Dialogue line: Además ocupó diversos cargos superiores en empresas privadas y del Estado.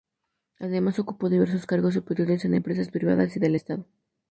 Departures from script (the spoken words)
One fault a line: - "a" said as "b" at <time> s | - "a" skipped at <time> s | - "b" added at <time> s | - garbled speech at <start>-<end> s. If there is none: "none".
none